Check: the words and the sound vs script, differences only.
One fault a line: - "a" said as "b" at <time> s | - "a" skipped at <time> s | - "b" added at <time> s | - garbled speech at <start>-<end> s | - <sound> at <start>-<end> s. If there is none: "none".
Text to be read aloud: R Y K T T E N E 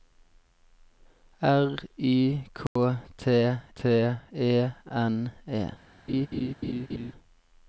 - dropout at 2.7-2.8 s
- laugh at 6.1-7.1 s